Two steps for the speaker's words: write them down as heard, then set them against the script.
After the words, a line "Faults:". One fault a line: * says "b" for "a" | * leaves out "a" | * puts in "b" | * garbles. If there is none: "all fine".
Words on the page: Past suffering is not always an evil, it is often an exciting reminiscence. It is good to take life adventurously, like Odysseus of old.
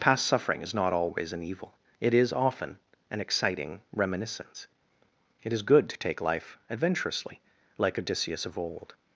Past suffering is not always an evil, it is often an exciting reminiscence. It is good to take life adventurously, like Odysseus of old.
Faults:
all fine